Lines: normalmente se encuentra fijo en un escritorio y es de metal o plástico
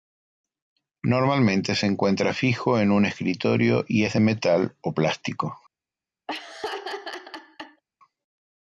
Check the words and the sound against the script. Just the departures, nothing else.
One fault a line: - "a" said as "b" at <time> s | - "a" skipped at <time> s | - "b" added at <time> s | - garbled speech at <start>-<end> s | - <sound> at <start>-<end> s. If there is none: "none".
- laugh at 6.3-7.8 s